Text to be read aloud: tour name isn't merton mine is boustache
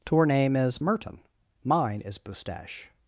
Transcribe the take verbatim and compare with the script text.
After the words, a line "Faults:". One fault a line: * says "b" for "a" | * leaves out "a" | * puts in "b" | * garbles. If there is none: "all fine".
tour name is merton mine is boustache
Faults:
* says "is" for "isn't"